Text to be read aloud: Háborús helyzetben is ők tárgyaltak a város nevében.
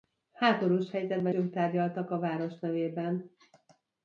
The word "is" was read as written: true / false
false